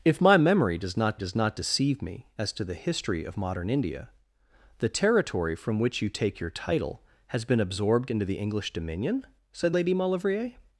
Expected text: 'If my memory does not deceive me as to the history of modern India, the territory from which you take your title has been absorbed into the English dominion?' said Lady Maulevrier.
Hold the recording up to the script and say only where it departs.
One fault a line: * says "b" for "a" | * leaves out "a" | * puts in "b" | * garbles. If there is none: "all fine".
* puts in "does not"